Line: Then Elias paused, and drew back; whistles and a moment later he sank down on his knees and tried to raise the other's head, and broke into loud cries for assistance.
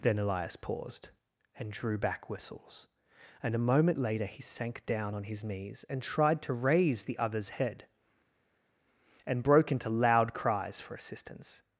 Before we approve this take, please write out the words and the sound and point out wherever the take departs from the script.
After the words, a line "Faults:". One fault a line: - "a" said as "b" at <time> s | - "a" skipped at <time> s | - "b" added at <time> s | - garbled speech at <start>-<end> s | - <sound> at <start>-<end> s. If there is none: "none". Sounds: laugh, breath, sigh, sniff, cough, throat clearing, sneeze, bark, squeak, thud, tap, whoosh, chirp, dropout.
Then Elias paused, and drew back; whistles and a moment later he sank down on his knees and tried to raise the other's head, and broke into loud cries for assistance.
Faults:
none